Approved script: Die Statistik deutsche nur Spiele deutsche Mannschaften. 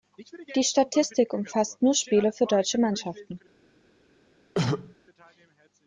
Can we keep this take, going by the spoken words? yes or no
no